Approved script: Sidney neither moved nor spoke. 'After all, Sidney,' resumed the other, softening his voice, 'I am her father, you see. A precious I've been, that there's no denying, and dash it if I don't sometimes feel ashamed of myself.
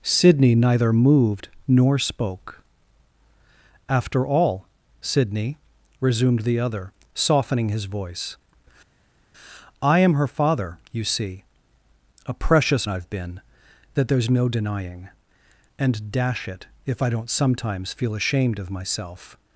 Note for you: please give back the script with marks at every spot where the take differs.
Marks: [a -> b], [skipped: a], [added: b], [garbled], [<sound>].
Sidney neither moved nor spoke. 'After all, Sidney,' resumed the other, softening his voice, 'I am her father, you see. A precious I've been, that there's no denying, and dash it if I don't sometimes feel ashamed of myself.